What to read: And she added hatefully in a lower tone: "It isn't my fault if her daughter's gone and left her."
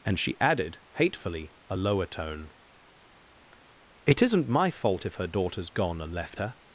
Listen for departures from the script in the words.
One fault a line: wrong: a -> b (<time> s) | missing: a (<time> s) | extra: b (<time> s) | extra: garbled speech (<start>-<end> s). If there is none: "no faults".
missing: in (1.5 s)